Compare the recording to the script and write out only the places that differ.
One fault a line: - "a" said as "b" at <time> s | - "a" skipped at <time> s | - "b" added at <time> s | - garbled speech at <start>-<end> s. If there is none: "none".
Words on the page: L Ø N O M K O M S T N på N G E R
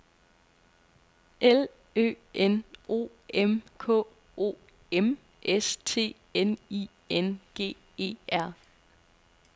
- "på" said as "I" at 6.7 s